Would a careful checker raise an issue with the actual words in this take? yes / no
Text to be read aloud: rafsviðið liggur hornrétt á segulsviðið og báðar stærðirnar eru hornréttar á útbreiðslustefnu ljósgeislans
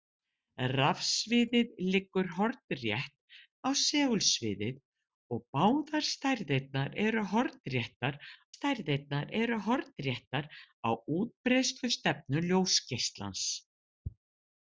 yes